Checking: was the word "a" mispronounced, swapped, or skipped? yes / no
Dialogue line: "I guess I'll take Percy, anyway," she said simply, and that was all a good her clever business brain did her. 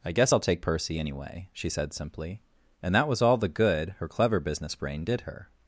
yes